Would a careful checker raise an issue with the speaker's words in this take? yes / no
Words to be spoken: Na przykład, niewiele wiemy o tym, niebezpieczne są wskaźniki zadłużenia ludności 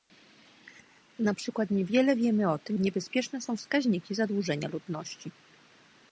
no